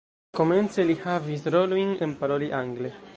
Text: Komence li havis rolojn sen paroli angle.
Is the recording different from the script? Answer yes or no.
no